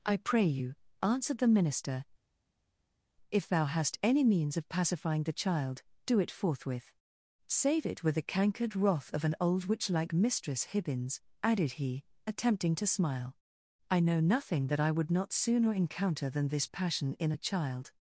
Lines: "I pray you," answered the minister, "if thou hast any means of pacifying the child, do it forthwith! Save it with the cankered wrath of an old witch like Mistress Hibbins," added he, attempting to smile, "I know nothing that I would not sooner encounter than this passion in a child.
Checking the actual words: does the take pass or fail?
pass